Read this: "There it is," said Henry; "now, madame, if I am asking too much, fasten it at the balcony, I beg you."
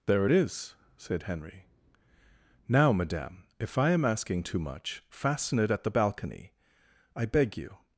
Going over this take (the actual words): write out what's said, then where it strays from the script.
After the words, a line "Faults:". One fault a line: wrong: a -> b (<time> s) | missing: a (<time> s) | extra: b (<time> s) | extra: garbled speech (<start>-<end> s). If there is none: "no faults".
"There it is," said Henry; "now, madame, if I am asking too much, fasten it at the balcony, I beg you."
Faults:
no faults